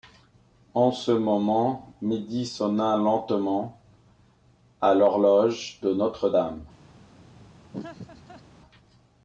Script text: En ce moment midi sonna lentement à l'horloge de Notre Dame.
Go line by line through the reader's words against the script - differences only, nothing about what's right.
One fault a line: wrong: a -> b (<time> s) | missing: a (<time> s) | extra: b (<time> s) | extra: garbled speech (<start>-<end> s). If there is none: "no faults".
no faults